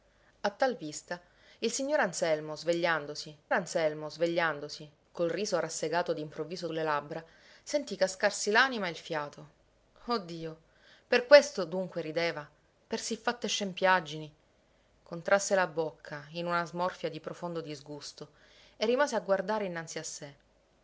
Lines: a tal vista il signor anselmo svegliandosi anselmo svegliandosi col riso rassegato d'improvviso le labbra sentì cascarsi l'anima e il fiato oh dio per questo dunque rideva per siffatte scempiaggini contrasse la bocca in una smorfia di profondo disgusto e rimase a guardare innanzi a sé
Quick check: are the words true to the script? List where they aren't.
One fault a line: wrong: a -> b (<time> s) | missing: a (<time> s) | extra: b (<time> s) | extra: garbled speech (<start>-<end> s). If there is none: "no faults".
no faults